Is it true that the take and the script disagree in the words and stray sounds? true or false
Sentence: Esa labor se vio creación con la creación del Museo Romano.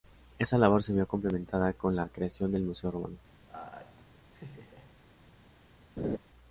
true